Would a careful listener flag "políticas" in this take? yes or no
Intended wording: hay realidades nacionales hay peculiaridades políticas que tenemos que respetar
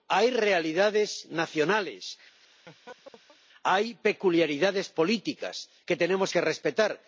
no